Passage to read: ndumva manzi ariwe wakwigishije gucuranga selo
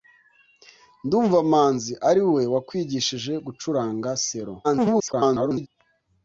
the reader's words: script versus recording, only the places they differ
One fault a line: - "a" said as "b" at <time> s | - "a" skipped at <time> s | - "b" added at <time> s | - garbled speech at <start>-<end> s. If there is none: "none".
- garbled speech at 4.6-5.7 s